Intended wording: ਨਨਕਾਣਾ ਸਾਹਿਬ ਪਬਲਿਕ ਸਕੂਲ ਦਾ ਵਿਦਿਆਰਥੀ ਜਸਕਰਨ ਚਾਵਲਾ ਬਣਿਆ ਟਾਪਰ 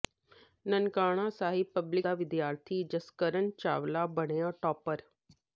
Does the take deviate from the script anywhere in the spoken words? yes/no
yes